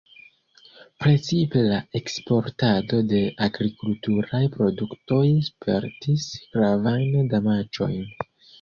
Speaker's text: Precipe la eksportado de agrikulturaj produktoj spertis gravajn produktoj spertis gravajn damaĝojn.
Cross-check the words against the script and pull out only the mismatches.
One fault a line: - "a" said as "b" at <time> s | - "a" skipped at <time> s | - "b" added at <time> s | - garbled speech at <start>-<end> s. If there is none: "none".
- "produktoj spertis gravajn" skipped at 7.3 s